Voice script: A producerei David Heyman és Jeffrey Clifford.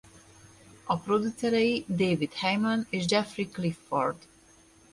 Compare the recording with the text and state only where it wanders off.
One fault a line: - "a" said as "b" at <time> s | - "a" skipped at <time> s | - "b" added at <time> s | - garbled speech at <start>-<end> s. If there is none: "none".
none